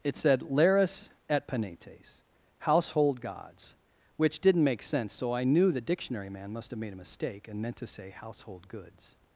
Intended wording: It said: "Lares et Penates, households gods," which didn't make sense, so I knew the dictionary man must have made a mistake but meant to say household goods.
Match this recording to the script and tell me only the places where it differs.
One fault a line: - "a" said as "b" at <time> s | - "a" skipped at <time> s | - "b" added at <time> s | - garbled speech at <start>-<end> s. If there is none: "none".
- "households" said as "household" at 2.6 s
- "but" said as "and" at 7.5 s